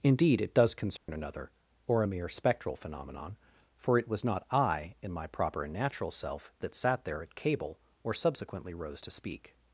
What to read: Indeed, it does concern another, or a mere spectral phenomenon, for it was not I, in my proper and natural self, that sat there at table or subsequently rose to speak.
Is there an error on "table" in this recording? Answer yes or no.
yes